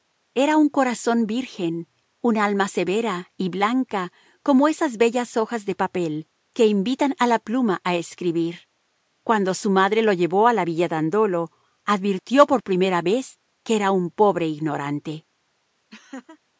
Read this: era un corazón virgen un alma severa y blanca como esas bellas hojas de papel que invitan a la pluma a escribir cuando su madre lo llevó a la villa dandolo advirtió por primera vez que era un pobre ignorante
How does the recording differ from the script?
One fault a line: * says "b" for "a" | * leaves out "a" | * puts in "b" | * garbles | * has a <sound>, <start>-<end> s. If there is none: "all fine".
* has a laugh, 15.9-16.4 s